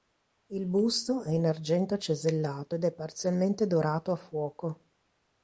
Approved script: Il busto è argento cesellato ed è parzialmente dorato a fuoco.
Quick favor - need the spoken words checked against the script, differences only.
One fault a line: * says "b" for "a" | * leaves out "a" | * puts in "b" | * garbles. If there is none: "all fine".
* puts in "in"